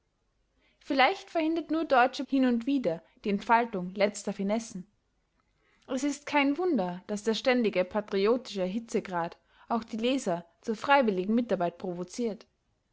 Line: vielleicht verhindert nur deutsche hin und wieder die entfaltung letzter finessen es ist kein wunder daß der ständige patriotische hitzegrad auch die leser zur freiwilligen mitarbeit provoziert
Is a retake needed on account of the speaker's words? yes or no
no